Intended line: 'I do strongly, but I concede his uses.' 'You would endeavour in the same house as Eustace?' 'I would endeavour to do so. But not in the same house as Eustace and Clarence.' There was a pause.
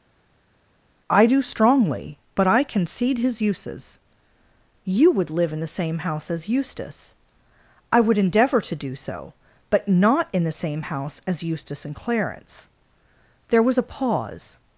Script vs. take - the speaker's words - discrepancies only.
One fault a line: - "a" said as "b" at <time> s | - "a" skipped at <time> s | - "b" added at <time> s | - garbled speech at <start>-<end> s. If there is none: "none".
- "endeavour" said as "live" at 5.3 s